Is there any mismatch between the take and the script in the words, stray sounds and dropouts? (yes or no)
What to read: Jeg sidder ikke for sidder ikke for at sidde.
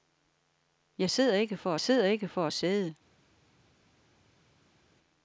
no